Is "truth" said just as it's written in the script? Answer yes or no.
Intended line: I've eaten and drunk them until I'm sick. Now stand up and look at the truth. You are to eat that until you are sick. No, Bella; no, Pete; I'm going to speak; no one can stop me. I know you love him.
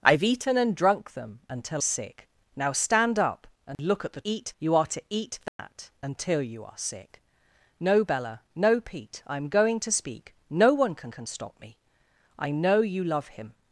no